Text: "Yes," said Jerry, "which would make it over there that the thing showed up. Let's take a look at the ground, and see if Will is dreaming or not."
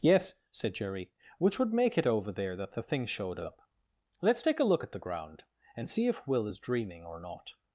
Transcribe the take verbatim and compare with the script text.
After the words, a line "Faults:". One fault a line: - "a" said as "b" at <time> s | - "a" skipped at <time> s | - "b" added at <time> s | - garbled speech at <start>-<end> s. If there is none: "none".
"Yes," said Jerry, "which would make it over there that the thing showed up. Let's take a look at the ground, and see if Will is dreaming or not."
Faults:
none